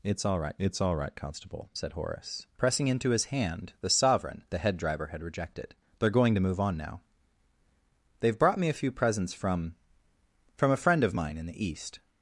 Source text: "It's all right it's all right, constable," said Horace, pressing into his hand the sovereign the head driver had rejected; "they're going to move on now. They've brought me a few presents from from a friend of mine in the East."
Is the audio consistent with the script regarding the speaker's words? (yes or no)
yes